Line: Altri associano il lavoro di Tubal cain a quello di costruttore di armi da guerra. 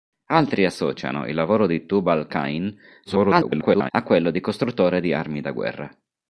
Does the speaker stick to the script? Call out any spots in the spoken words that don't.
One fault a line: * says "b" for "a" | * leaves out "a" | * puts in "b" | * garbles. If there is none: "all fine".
* garbles